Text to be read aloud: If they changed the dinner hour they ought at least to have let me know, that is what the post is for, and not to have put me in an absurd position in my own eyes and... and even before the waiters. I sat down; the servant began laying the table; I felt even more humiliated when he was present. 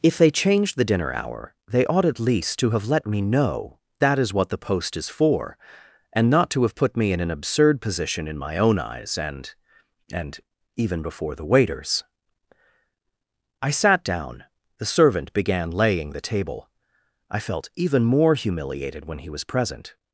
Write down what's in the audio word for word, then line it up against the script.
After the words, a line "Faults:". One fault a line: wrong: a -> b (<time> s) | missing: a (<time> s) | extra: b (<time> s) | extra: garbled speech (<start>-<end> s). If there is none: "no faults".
If they changed the dinner hour they ought at least to have let me know, that is what the post is for, and not to have put me in an absurd position in my own eyes and... and even before the waiters. I sat down; the servant began laying the table; I felt even more humiliated when he was present.
Faults:
no faults